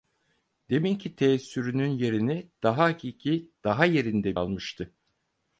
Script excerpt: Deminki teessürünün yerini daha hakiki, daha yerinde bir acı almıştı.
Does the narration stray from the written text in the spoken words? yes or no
yes